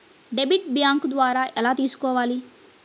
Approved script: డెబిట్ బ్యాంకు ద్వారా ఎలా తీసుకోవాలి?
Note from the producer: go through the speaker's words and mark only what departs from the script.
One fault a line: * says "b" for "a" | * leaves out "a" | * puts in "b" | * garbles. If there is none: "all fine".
all fine